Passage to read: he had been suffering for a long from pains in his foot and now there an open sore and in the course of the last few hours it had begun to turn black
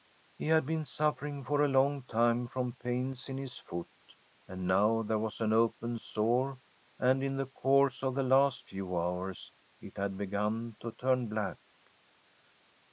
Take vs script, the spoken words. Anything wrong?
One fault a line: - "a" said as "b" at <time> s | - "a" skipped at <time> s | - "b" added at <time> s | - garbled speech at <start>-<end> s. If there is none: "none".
- "time" added at 2.0 s
- "was" added at 5.2 s